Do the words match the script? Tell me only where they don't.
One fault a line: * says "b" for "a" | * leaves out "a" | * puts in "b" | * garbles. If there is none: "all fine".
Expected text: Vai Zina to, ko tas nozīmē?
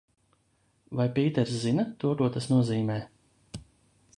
* puts in "Pīters"